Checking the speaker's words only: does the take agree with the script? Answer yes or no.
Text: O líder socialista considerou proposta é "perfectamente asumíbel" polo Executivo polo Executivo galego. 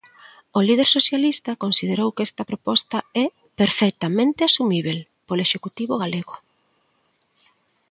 no